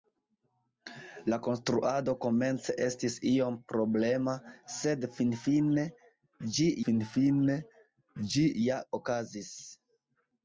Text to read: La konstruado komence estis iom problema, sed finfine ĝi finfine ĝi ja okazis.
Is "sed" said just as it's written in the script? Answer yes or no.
yes